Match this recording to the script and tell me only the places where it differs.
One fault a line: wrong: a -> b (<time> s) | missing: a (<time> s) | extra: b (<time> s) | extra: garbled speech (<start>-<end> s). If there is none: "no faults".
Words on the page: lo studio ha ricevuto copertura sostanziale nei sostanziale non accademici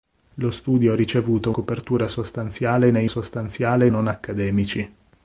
no faults